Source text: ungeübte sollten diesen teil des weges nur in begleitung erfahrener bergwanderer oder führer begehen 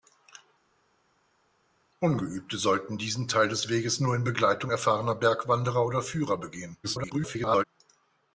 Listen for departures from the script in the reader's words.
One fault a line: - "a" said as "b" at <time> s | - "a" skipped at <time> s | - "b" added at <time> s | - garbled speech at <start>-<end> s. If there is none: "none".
- garbled speech at 6.8-7.6 s